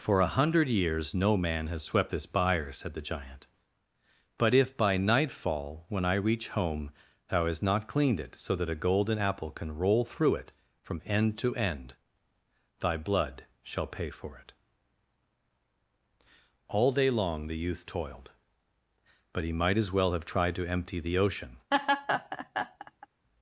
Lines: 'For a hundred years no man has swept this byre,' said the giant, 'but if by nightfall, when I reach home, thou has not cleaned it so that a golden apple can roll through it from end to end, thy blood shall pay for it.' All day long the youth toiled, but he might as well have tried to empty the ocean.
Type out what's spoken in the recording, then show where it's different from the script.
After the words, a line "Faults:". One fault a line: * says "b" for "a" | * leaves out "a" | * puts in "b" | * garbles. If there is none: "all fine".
'For a hundred years no man has swept this byre,' said the giant, 'but if by nightfall, when I reach home, thou hast not cleaned it so that a golden apple can roll through it from end to end, thy blood shall pay for it.' All day long the youth toiled, but he might as well have tried to empty the ocean.
Faults:
* says "hast" for "has"